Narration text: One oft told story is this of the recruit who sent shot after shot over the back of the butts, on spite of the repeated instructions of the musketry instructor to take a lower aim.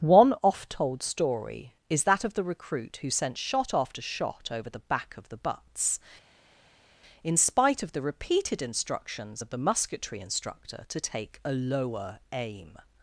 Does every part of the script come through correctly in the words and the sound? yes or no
no